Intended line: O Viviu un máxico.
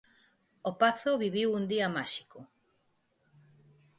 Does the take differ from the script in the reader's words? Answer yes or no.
yes